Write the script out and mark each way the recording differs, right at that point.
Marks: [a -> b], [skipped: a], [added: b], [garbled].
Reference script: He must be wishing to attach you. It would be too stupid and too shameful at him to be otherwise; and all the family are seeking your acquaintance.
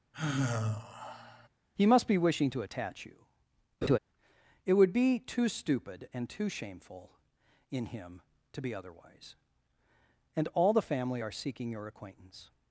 He must be wishing to attach you. It would be too stupid and too shameful [at -> in] him to be otherwise; and all the family are seeking your acquaintance.